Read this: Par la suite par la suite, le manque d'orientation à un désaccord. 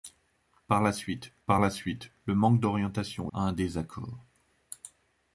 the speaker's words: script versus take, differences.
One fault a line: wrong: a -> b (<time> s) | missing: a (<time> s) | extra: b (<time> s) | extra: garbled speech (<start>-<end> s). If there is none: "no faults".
no faults